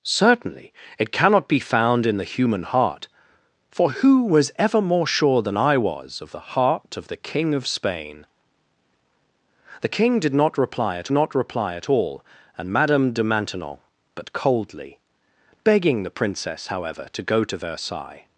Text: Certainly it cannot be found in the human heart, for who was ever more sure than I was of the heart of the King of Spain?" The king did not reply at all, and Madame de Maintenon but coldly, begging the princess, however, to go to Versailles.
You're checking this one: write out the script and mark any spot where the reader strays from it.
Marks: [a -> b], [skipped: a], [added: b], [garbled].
Certainly it cannot be found in the human heart, for who was ever more sure than I was of the heart of the King of Spain?" The king did not reply at [added: not reply at] all, and Madame de Maintenon but coldly, begging the princess, however, to go to Versailles.